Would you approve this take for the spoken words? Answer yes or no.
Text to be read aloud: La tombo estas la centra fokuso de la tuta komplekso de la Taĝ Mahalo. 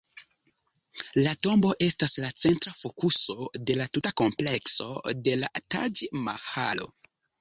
yes